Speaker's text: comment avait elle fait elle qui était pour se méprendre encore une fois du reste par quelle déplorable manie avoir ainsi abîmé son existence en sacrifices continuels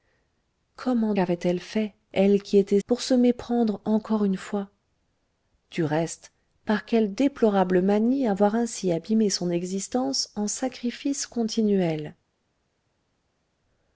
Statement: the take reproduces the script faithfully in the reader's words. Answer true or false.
true